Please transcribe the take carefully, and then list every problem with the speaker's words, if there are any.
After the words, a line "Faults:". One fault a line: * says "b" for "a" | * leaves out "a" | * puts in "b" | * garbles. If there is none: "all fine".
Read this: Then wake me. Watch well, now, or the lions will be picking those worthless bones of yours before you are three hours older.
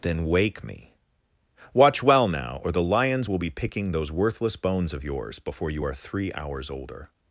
Then wake me. Watch well, now, or the lions will be picking those worthless bones of yours before you are three hours older.
Faults:
all fine